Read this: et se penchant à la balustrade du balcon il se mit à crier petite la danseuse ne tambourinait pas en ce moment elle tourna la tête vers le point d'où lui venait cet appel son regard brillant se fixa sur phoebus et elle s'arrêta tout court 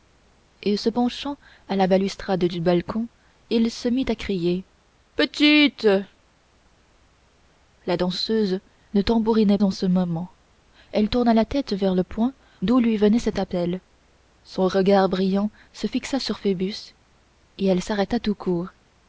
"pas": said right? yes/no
no